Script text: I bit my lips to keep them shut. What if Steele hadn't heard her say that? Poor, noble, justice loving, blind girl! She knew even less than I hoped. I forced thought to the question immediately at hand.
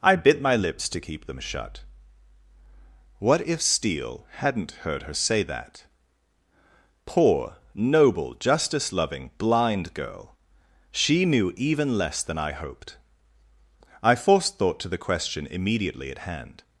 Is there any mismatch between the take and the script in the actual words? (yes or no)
no